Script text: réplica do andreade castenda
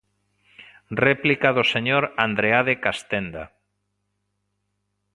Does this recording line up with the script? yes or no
no